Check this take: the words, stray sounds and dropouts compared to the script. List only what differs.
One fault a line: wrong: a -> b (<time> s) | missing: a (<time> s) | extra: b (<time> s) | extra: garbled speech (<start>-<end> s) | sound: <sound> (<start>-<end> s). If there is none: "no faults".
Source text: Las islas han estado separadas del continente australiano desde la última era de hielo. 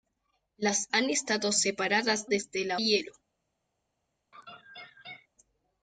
missing: islas (0.9 s)
missing: del continente australiano (2.3 s)
missing: última era de (2.8 s)
sound: laugh (4.3-5.3 s)